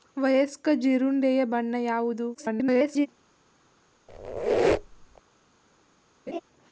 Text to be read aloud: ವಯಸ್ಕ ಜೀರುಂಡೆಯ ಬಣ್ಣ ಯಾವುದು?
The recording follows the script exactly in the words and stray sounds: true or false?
false